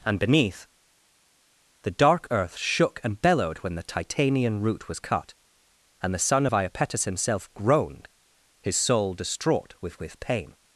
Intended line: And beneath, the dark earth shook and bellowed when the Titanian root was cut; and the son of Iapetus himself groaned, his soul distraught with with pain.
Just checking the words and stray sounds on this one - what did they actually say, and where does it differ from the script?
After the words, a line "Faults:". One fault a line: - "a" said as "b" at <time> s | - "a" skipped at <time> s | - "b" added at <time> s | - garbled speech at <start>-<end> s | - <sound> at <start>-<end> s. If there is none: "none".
And beneath, the dark earth shook and bellowed when the Titanian root was cut; and the son of Iapetus himself groaned, his soul distraught with with pain.
Faults:
none